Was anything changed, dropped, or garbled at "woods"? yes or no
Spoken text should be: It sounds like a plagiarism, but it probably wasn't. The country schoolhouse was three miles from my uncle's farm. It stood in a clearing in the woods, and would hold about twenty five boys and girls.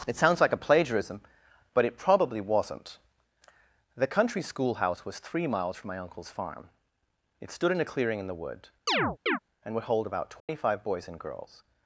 yes